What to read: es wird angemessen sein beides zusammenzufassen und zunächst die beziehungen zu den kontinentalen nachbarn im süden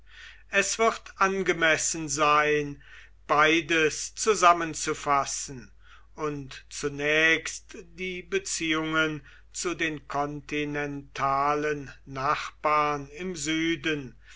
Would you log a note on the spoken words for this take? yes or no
no